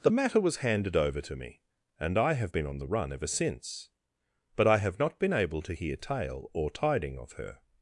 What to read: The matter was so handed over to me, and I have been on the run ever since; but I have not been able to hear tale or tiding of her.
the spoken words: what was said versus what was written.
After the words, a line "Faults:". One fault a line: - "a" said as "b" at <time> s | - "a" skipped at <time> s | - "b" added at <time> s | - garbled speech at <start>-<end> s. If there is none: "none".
The matter was handed over to me, and I have been on the run ever since; but I have not been able to hear tale or tiding of her.
Faults:
- "so" skipped at 0.6 s